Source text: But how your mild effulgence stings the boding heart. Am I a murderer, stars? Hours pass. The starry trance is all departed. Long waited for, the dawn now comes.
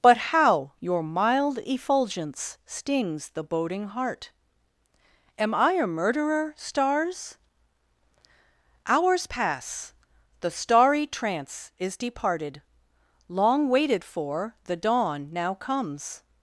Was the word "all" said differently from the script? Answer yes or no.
yes